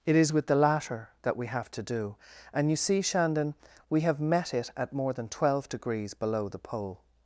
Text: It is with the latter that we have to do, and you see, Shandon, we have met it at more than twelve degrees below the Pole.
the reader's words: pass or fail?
pass